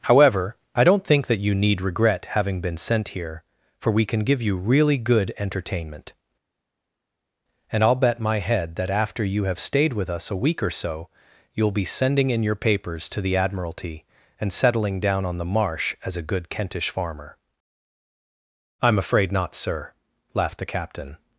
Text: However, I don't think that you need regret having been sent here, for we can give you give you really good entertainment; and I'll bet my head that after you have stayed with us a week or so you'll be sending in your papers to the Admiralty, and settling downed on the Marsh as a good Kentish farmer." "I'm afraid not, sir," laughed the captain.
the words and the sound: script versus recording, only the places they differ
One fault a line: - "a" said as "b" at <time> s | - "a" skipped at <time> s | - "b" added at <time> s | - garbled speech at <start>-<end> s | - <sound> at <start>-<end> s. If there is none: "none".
- "give you" skipped at 4.6 s
- "downed" said as "down" at 15.0 s